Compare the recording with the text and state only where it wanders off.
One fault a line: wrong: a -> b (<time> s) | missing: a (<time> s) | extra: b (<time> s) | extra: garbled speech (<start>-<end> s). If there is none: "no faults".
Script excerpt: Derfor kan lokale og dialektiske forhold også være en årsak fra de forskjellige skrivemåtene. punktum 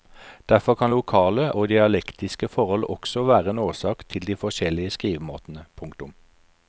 wrong: fra -> til (4.1 s)